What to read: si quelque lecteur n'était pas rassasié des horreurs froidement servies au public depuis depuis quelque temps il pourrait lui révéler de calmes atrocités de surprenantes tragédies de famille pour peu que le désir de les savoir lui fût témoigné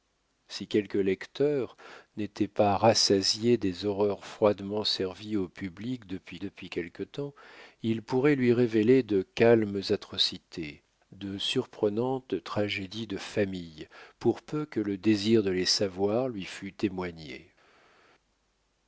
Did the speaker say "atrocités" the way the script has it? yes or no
yes